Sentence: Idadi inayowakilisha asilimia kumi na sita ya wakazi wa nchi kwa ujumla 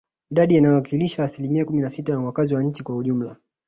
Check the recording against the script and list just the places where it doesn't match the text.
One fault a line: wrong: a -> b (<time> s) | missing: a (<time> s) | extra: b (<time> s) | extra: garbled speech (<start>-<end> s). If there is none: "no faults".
no faults